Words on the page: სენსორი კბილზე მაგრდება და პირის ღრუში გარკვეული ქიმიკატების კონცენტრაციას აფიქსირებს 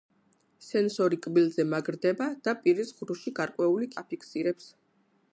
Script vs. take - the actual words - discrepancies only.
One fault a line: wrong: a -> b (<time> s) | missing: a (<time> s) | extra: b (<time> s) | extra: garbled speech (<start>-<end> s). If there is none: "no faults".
missing: ქიმიკატების კონცენტრაციას (3.9 s)